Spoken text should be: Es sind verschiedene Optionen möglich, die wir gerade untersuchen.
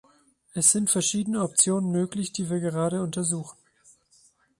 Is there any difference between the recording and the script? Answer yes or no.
no